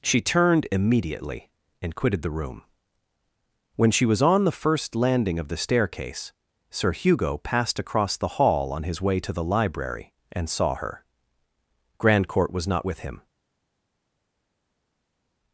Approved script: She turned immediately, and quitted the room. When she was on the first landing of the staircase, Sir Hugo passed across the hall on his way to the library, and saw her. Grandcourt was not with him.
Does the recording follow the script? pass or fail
pass